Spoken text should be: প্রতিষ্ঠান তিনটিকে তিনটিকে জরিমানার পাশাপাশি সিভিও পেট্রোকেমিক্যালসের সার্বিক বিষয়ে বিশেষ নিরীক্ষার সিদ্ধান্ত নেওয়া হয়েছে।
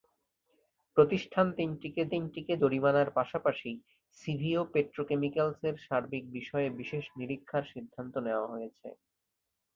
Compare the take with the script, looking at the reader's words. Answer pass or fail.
pass